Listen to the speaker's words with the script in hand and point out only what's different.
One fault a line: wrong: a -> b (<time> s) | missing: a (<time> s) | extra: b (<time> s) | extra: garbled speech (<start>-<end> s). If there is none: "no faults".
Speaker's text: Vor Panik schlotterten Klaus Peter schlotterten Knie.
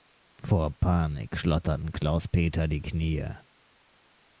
wrong: schlotterten -> die (2.7 s)